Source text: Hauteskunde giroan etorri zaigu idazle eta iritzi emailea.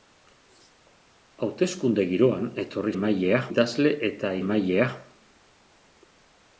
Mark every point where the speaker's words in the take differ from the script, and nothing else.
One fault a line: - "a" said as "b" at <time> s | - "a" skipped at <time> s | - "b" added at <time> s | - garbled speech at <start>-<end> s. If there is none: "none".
- "zaigu" said as "emailea" at 2.9 s
- "iritzi" skipped at 4.3 s